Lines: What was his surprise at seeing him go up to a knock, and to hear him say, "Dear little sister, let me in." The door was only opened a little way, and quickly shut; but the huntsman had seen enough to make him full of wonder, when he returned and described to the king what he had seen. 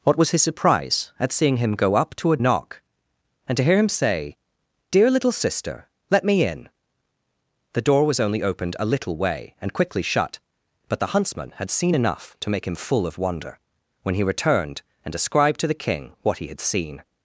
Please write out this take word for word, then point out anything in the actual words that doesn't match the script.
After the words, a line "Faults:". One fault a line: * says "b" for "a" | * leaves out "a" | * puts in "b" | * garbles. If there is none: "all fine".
What was his surprise at seeing him go up to a knock, and to hear him say, "Dear little sister, let me in." The door was only opened a little way, and quickly shut; but the huntsman had seen enough to make him full of wonder, when he returned and described to the king what he had seen.
Faults:
all fine